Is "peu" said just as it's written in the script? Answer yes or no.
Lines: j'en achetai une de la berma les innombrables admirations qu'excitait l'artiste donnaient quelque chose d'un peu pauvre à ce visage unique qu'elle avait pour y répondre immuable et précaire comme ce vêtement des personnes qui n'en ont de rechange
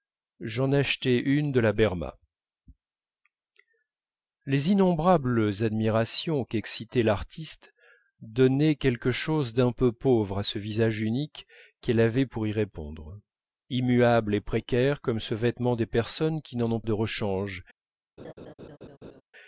yes